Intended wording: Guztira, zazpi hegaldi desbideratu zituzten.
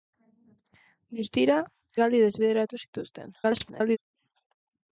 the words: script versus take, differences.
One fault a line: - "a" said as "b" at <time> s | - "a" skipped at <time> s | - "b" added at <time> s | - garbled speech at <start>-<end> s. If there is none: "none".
- "zazpi" skipped at 1.6 s
- garbled speech at 3.4-4.0 s